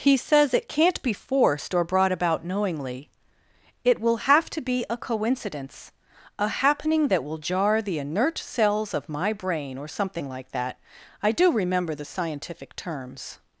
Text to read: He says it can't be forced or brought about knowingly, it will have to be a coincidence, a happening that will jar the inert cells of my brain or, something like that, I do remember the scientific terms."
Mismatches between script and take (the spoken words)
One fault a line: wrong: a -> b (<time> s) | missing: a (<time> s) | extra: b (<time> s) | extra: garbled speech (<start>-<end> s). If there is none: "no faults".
no faults